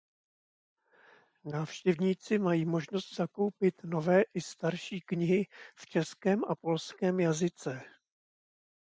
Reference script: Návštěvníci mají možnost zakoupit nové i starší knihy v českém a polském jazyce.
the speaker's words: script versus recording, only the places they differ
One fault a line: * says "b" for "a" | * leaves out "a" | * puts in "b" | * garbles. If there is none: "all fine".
all fine